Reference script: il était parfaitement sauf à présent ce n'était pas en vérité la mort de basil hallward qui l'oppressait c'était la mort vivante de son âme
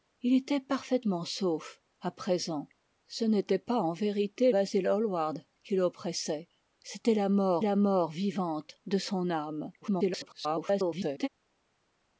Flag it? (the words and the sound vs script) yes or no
yes